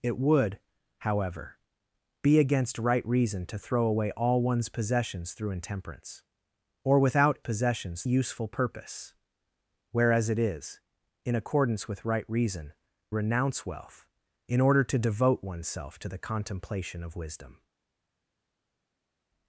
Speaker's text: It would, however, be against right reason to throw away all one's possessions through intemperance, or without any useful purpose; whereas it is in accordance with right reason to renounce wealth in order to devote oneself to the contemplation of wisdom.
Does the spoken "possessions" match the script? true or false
true